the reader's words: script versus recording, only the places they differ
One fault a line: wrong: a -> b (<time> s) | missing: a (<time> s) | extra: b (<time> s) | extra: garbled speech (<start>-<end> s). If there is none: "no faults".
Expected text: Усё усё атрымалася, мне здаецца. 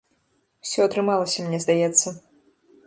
missing: усё (0.8 s)